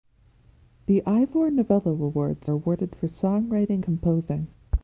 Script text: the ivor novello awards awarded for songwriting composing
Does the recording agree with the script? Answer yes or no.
yes